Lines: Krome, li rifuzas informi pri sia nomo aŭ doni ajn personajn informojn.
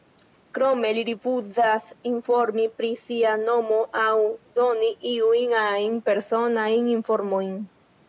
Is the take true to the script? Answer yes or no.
no